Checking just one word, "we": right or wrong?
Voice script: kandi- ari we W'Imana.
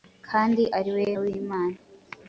right